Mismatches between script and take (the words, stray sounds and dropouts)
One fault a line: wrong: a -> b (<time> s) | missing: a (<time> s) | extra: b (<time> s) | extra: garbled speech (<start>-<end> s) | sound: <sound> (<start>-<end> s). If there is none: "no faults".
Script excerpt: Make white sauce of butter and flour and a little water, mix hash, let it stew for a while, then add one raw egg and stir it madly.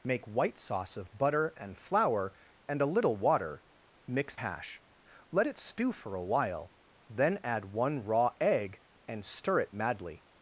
no faults